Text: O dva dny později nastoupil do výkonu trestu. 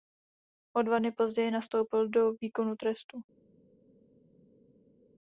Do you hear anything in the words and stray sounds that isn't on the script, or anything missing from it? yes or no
no